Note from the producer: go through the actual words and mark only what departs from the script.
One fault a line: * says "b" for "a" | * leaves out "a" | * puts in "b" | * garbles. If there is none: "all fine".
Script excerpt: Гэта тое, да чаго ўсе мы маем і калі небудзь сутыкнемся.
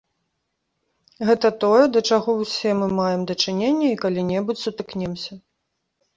* puts in "дачыненне"